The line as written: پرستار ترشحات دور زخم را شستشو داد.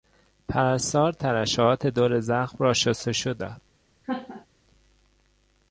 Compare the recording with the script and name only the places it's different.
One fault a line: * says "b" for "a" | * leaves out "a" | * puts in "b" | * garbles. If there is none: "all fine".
all fine